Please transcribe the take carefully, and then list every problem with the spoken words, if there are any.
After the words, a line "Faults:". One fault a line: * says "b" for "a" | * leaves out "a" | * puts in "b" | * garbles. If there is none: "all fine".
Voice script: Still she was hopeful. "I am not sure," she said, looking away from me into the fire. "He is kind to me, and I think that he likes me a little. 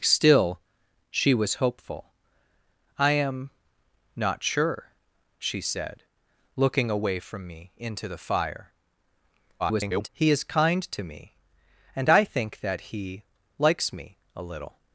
Still she was hopeful. "I am not sure," she said, looking away from me into the fire. [garbled] "He is kind to me, and I think that he likes me a little.
Faults:
* garbles